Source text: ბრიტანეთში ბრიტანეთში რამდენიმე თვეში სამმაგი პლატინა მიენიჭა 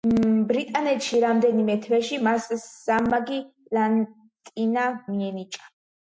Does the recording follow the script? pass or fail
fail